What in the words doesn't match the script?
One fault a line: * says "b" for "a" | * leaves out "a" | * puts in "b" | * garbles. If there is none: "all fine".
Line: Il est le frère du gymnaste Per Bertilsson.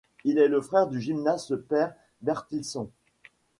all fine